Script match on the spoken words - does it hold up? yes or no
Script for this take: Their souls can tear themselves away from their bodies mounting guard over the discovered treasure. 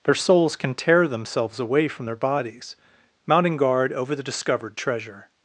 yes